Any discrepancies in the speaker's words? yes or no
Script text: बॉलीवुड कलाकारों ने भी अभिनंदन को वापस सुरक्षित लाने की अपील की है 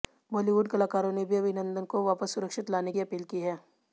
no